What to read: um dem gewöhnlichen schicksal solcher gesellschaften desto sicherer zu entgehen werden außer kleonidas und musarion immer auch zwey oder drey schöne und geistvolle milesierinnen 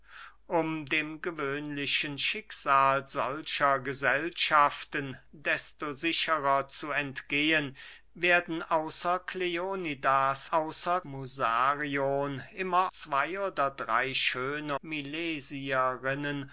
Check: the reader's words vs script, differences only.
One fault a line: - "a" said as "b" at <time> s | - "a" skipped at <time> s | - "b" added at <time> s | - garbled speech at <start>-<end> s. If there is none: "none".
- "und" said as "außer" at 10.4 s
- "auch" skipped at 12.9 s
- "und geistvolle" skipped at 14.8 s